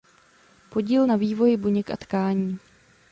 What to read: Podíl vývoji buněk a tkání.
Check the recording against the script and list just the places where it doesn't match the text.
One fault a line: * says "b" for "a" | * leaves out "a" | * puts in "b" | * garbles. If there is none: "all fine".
* puts in "na"